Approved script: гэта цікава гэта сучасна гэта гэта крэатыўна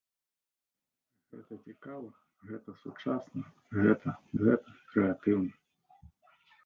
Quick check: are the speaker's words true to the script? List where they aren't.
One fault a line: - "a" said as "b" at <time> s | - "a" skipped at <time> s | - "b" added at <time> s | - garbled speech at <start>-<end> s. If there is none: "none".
none